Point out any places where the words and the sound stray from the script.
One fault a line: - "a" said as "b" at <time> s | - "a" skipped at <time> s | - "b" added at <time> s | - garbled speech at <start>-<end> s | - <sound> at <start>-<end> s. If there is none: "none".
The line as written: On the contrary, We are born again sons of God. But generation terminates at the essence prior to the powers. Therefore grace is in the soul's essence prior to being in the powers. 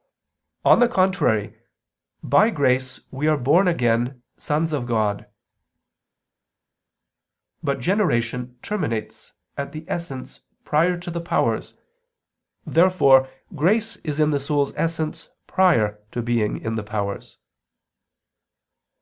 - "By grace" added at 2.2 s